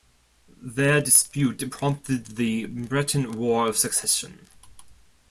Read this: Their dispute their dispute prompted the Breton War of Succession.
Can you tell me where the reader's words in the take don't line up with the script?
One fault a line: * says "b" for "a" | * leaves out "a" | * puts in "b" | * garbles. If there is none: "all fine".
* leaves out "their dispute"